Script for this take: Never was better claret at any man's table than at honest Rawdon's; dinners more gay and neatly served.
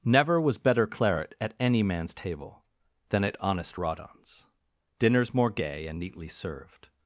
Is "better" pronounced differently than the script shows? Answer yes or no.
no